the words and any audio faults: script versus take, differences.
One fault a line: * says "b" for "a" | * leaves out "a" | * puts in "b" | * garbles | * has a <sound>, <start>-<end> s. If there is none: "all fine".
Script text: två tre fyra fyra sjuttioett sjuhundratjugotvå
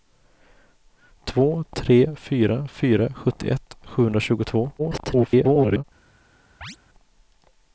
* garbles
* has a chirp, 6.6-6.8 s